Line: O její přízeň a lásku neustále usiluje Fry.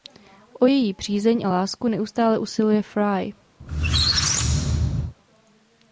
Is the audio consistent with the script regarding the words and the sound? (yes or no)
no